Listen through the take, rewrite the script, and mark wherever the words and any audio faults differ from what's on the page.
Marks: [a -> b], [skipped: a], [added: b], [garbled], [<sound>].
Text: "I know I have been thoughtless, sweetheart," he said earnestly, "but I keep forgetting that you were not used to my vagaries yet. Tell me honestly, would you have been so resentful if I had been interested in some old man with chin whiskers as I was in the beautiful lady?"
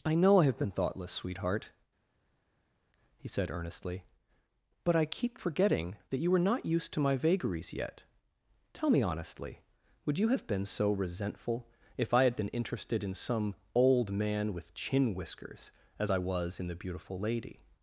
"I know I have been thoughtless, sweetheart," he said earnestly, "but I keep forgetting that you were not used to my vagaries yet. Tell me honestly, would you have been so resentful if I had been interested in some old man with chin whiskers as I was in the beautiful lady?"